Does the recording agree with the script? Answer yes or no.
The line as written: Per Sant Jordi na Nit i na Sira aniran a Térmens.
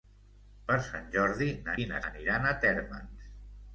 no